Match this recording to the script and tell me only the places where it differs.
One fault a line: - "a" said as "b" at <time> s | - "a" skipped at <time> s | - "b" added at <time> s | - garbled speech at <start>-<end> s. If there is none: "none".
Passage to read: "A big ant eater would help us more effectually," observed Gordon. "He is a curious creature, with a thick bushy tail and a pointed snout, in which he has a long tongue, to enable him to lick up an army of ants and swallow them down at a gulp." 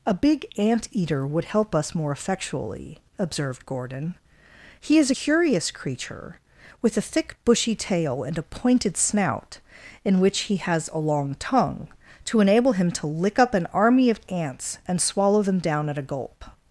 - "a" skipped at 5.1 s